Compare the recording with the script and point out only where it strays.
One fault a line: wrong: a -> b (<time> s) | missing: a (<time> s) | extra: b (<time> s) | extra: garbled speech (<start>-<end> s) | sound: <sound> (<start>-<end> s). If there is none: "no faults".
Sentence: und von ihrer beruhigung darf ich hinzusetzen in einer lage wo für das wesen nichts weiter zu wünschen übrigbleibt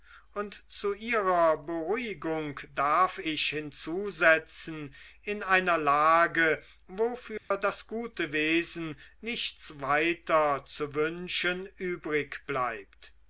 wrong: von -> zu (0.7 s)
sound: dropout (7.4-7.5 s)
extra: gute (7.8 s)